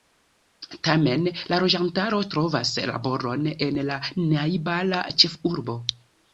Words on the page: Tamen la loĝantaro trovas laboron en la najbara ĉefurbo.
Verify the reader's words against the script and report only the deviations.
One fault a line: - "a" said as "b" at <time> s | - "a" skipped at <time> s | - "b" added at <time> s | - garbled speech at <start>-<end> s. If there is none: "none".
none